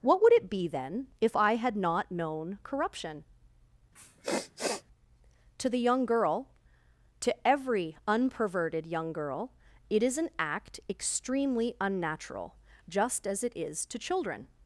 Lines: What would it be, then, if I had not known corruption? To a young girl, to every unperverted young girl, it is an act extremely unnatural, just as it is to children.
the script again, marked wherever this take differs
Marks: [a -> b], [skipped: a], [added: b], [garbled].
What would it be, then, if I had not known corruption? To [a -> the] young girl, to every unperverted young girl, it is an act extremely unnatural, just as it is to children.